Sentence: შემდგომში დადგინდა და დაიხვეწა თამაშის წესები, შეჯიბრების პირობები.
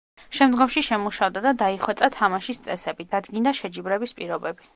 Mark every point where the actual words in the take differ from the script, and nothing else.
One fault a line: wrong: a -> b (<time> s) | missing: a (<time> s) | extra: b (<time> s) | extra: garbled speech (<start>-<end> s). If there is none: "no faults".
wrong: დადგინდა -> შემუშავდა (0.9 s)
extra: დადგინდა (3.2 s)